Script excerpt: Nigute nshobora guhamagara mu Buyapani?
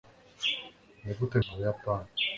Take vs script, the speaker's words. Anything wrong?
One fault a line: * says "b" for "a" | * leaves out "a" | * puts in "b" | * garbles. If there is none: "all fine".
* leaves out "nshobora guhamagara"